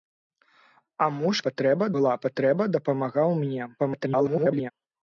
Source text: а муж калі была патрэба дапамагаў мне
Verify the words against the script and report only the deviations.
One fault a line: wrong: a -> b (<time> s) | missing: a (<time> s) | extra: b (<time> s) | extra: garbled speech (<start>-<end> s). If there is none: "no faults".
wrong: калі -> патрэба (1.5 s)
extra: garbled speech (3.8-4.7 s)